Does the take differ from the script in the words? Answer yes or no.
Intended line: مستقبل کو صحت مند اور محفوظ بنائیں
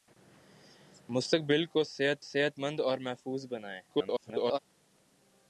yes